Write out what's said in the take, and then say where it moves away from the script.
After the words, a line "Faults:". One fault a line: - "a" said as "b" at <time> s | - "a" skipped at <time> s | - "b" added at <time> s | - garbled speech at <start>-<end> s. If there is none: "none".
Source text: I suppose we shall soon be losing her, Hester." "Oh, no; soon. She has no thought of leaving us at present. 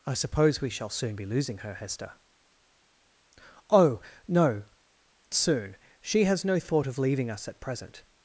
I suppose we shall soon be losing her, Hester." "Oh, no; soon. She has no thought of leaving us at present.
Faults:
none